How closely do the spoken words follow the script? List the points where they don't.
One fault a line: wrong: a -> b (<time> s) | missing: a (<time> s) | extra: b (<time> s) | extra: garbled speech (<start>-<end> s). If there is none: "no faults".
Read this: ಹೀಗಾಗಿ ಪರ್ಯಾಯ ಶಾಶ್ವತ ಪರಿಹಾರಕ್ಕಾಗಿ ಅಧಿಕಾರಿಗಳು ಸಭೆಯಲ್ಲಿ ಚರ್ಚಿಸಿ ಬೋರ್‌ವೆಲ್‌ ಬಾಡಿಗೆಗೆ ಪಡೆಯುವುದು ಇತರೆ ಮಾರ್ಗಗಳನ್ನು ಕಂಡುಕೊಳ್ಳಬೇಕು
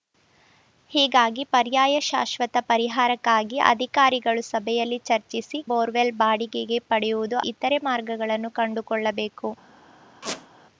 no faults